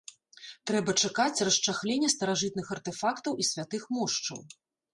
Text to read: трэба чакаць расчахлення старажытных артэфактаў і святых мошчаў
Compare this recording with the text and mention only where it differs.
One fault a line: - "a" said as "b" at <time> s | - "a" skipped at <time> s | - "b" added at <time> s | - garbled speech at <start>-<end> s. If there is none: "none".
none